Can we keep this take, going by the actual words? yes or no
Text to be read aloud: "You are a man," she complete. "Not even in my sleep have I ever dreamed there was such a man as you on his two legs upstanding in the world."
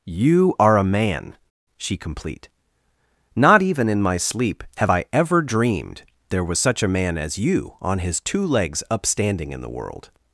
yes